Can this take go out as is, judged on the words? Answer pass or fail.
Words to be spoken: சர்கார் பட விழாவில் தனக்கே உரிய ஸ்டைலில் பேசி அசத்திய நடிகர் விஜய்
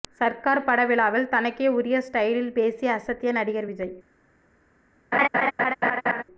pass